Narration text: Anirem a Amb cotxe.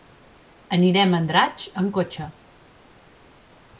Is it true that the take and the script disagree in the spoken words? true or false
true